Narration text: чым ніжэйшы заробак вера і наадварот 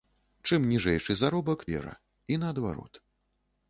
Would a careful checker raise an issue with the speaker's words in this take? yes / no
no